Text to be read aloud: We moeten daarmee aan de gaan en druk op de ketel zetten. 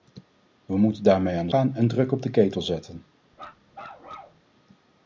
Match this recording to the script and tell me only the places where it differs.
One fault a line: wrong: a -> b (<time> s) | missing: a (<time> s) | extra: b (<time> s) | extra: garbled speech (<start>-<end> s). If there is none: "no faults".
no faults